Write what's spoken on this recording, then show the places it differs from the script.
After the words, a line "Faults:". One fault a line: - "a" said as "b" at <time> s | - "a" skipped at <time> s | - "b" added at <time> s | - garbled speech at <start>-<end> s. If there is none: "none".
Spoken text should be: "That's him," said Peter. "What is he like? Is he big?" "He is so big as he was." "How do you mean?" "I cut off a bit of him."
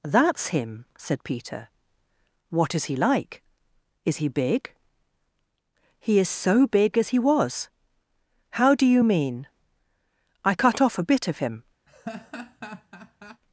"That's him," said Peter. "What is he like? Is he big?" "He is so big as he was." "How do you mean?" "I cut off a bit of him."
Faults:
none